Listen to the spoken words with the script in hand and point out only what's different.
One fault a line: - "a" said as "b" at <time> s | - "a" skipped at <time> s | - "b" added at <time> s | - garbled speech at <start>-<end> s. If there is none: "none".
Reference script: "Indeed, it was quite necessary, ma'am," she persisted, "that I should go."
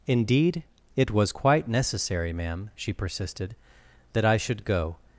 none